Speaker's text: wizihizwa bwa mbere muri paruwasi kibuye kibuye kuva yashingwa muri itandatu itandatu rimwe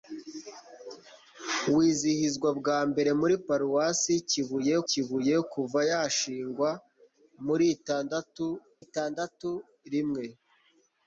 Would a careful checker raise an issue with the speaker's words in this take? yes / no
no